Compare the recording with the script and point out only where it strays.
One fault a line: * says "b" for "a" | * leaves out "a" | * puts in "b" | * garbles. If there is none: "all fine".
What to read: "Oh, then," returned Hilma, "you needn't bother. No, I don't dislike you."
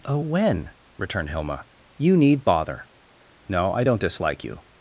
* says "when" for "then"
* says "need" for "needn't"